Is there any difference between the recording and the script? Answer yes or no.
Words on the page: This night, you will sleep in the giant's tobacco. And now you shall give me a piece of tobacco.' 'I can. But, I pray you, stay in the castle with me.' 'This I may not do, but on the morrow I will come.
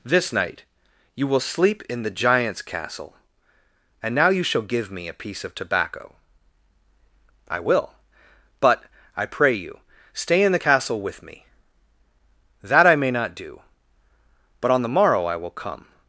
yes